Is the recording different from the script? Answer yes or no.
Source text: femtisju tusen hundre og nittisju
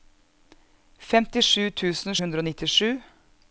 no